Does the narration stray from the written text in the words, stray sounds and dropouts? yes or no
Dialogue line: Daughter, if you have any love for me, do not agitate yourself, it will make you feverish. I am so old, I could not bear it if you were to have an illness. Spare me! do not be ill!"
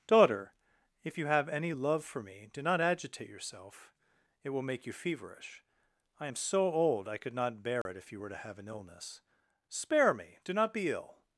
yes